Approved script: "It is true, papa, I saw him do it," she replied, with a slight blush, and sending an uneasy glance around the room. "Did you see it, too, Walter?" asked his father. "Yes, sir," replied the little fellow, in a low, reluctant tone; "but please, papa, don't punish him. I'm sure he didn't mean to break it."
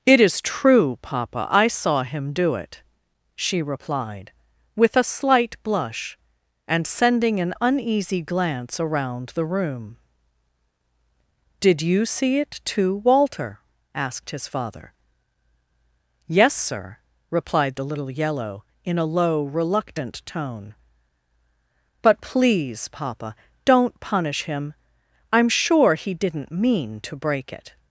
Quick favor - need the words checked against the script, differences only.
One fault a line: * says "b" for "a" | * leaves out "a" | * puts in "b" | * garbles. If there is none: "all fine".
* says "yellow" for "fellow"